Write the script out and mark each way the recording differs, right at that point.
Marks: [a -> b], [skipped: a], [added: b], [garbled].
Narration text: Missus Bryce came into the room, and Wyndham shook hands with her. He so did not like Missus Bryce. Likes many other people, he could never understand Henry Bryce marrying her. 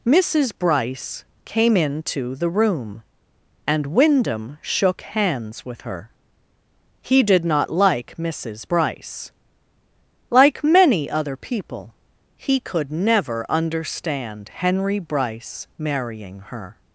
Missus Bryce came into the room, and Wyndham shook hands with her. He [skipped: so] did not like Missus Bryce. [Likes -> Like] many other people, he could never understand Henry Bryce marrying her.